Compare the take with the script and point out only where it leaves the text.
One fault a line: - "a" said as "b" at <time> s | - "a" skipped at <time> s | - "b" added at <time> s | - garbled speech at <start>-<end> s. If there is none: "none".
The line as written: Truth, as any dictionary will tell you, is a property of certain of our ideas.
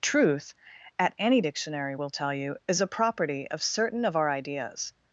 - "as" said as "at" at 1.0 s